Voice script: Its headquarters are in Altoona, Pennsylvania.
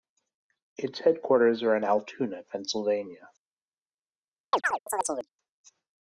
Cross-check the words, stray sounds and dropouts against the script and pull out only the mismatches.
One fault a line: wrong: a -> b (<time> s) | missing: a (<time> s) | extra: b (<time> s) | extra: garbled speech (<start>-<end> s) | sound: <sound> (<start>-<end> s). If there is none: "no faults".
sound: chirp (4.5-5.3 s)